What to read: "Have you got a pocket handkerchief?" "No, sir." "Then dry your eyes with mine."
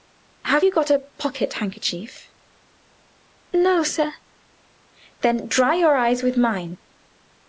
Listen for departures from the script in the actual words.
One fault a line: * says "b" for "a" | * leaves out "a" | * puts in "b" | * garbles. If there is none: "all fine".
all fine